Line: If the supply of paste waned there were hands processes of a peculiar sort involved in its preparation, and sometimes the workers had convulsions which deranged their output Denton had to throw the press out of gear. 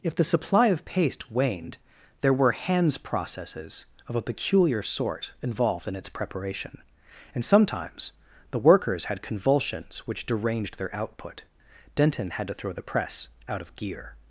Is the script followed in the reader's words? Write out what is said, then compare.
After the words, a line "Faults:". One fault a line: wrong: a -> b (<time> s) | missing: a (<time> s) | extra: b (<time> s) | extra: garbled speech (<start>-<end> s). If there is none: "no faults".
If the supply of paste waned there were hands processes of a peculiar sort involved in its preparation, and sometimes the workers had convulsions which deranged their output Denton had to throw the press out of gear.
Faults:
no faults